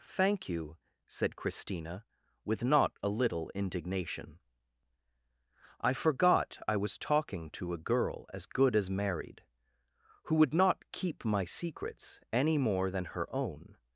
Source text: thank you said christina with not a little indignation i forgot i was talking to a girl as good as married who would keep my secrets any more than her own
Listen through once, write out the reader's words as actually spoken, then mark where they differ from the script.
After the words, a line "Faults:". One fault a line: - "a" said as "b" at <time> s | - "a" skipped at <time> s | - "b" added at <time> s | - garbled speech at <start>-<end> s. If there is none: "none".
thank you said christina with not a little indignation i forgot i was talking to a girl as good as married who would not keep my secrets any more than her own
Faults:
- "not" added at 10.6 s